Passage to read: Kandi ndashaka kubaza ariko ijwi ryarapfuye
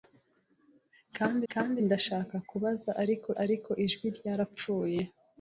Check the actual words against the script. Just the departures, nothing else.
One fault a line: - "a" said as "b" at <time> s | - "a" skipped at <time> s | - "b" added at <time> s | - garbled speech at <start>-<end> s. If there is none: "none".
- "kandi" added at 1.5 s
- "ariko" added at 3.4 s